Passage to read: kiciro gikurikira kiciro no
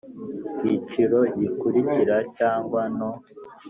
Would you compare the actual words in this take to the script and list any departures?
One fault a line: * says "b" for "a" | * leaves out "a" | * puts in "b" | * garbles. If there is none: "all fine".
* says "cyangwa" for "kiciro"